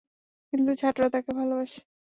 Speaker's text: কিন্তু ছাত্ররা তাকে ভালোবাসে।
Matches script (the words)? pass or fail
pass